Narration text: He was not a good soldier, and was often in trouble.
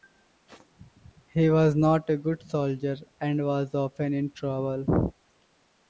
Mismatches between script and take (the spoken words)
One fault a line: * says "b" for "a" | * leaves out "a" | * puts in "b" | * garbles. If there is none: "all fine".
all fine